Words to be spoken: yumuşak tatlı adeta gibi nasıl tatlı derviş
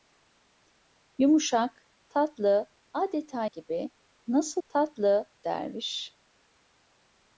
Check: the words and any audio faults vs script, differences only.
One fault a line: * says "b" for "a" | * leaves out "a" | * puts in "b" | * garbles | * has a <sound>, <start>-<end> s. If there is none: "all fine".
all fine